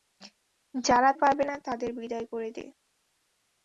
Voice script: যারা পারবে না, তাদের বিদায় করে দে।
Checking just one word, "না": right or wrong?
right